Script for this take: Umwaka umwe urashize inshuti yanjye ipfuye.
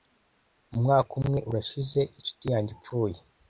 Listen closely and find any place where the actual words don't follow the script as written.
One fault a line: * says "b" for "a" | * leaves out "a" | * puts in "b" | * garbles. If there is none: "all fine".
all fine